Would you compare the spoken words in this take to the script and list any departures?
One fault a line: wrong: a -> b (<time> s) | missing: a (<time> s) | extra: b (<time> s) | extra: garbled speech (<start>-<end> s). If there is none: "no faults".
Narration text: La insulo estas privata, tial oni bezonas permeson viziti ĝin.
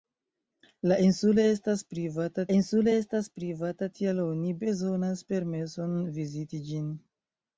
extra: insulo estas privata (2.6 s)